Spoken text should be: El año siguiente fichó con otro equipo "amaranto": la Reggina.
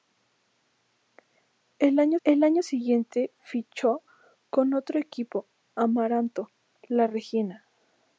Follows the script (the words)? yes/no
no